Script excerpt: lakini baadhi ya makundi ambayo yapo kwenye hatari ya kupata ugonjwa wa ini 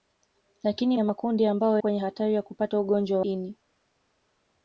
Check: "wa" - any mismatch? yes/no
yes